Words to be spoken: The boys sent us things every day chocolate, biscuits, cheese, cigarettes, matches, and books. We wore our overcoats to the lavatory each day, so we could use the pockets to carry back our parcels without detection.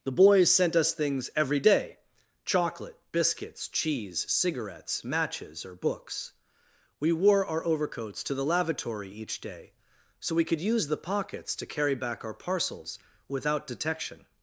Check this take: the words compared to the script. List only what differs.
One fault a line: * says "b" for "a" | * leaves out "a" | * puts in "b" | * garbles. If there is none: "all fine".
* says "or" for "and"